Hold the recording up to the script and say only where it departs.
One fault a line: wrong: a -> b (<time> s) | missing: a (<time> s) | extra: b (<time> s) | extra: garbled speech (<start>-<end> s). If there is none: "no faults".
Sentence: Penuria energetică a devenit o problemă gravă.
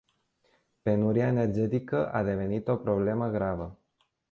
no faults